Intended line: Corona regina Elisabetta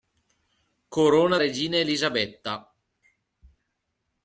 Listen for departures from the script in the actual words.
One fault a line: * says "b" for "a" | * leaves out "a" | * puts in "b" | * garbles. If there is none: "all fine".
all fine